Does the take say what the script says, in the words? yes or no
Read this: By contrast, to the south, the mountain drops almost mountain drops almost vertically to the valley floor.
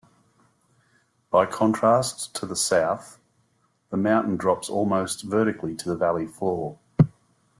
no